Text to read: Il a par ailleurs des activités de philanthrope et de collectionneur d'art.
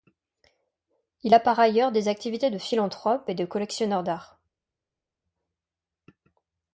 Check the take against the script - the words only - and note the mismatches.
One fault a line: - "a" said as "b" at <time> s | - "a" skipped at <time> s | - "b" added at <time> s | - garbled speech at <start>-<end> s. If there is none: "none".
none